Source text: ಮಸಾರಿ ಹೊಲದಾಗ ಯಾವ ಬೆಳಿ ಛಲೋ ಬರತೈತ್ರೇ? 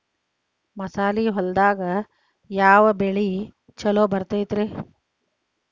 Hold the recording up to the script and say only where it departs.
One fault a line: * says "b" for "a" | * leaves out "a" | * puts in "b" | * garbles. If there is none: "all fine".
all fine